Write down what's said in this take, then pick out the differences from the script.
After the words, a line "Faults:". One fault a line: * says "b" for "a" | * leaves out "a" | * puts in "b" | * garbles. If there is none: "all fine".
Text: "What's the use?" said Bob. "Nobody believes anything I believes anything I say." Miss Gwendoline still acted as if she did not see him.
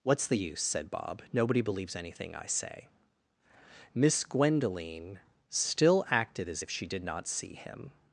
"What's the use?" said Bob. "Nobody believes anything I say." Miss Gwendoline still acted as if she did not see him.
Faults:
* leaves out "believes anything I"